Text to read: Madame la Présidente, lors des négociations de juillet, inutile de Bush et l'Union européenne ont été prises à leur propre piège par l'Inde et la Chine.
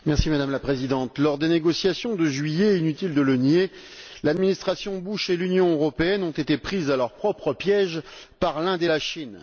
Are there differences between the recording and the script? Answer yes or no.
yes